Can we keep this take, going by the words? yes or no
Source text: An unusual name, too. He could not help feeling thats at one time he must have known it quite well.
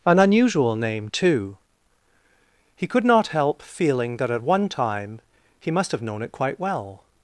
no